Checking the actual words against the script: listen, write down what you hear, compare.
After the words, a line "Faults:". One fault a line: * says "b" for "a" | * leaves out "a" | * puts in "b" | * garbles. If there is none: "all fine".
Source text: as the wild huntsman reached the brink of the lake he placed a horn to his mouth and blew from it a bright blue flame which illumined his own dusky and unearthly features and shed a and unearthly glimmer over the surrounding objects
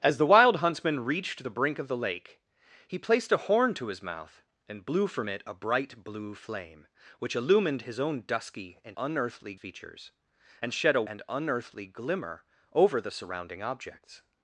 as the wild huntsman reached the brink of the lake he placed a horn to his mouth and blew from it a bright blue flame which illumined his own dusky and unearthly features and shed a and unearthly glimmer over the surrounding objects
Faults:
all fine